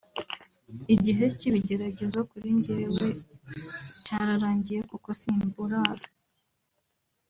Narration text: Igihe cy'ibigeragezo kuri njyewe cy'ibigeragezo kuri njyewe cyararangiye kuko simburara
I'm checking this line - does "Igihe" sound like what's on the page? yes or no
yes